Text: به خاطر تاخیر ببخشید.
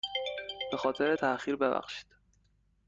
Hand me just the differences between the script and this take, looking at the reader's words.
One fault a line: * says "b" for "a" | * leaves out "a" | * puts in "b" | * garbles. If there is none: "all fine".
all fine